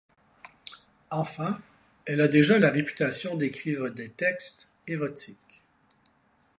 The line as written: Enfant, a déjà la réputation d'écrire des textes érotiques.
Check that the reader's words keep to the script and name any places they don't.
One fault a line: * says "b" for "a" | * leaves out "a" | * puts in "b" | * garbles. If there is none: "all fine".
* puts in "elle"